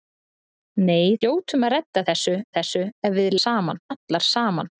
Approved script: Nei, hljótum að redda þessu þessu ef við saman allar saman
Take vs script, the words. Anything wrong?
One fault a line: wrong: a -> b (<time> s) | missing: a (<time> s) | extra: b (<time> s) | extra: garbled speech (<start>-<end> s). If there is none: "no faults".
no faults